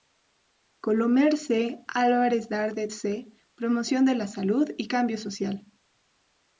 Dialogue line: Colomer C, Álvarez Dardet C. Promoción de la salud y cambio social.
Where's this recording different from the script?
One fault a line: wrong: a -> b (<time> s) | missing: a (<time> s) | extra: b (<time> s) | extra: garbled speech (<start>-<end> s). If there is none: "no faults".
no faults